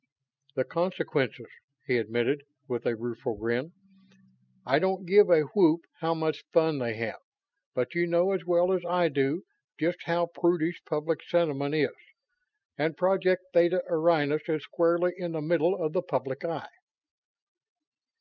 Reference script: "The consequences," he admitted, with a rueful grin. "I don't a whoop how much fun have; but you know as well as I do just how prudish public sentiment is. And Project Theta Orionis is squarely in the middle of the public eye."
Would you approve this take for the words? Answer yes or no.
no